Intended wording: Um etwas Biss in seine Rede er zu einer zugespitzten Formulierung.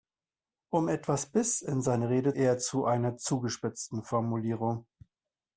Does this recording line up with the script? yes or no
yes